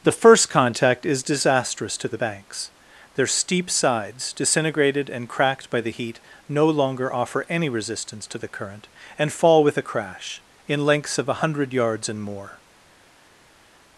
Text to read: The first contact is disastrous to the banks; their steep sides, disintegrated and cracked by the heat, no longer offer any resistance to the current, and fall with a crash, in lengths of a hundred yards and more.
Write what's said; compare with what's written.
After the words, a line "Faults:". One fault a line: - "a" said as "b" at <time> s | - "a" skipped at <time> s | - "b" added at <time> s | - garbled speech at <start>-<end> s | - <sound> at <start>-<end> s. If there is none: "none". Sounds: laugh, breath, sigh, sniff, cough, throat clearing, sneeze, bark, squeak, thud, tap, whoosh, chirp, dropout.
The first contact is disastrous to the banks; their steep sides, disintegrated and cracked by the heat, no longer offer any resistance to the current, and fall with a crash, in lengths of a hundred yards and more.
Faults:
none